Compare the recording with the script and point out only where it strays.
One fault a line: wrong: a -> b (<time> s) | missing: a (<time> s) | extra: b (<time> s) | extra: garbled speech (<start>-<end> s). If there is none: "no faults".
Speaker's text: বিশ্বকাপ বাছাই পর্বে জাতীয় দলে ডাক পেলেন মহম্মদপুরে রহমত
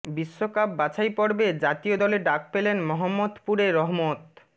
no faults